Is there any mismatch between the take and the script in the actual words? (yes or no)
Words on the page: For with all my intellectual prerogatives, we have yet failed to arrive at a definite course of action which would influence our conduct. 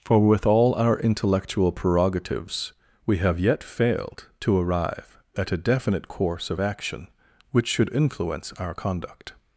yes